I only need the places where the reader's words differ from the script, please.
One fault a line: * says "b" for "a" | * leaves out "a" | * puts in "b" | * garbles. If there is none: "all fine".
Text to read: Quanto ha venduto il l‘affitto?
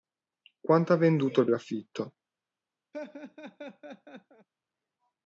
all fine